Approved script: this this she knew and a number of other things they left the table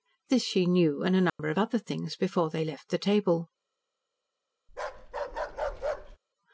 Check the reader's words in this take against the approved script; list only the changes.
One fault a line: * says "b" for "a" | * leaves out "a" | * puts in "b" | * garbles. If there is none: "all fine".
* leaves out "this"
* puts in "before"